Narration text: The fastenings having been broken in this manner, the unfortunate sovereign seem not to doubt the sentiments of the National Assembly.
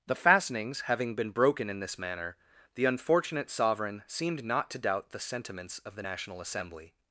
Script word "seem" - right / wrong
wrong